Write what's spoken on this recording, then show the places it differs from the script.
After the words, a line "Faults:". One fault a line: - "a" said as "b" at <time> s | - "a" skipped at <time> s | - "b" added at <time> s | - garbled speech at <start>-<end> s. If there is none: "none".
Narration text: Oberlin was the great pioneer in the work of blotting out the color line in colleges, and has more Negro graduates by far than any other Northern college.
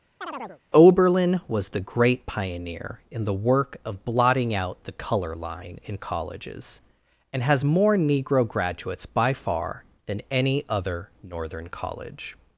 Oberlin was the great pioneer in the work of blotting out the color line in colleges, and has more Negro graduates by far than any other Northern college.
Faults:
none